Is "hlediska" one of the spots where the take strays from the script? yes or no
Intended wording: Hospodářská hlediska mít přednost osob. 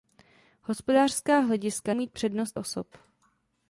no